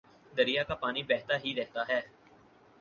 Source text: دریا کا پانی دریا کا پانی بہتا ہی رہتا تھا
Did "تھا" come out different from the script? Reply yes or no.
yes